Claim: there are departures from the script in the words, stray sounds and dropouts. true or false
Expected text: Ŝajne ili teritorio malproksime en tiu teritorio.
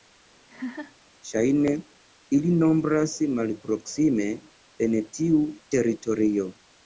true